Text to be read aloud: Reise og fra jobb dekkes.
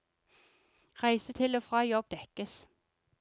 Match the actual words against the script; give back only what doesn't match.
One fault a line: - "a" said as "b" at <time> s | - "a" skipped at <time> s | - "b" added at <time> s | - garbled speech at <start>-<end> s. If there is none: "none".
- "til" added at 1.3 s